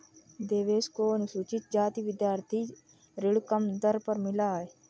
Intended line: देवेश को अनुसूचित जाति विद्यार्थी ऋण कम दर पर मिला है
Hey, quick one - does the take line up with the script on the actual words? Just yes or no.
yes